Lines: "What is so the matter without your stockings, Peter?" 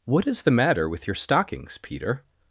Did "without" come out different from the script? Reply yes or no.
yes